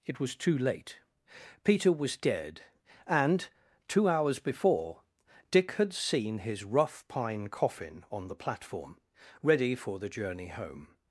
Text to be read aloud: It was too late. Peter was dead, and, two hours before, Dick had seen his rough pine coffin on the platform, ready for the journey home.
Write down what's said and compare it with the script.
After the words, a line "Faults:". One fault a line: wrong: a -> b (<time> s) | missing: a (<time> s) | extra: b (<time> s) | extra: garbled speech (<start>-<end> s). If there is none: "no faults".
It was too late. Peter was dead, and, two hours before, Dick had seen his rough pine coffin on the platform, ready for the journey home.
Faults:
no faults